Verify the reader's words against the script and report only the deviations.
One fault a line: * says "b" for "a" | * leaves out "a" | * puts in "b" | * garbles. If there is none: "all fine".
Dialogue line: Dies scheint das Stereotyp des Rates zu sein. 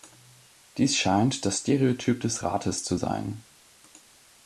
all fine